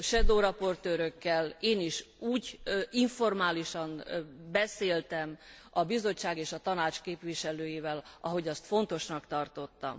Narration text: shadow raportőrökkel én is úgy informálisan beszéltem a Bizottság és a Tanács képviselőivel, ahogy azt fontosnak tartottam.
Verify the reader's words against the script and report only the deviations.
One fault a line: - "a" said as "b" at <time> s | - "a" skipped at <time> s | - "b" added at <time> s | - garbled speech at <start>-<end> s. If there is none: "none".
none